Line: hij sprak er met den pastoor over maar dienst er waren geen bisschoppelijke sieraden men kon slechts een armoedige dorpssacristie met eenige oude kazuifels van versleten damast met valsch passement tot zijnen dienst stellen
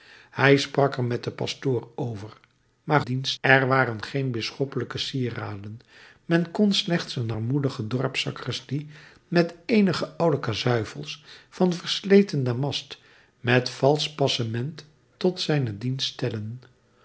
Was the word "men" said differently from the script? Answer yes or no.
no